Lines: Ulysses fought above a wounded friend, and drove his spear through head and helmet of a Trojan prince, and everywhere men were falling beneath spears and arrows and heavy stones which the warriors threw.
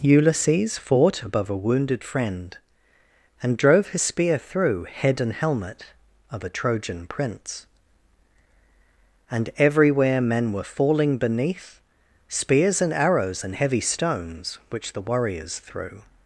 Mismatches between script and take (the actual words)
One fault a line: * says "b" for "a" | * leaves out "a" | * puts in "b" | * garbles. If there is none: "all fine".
all fine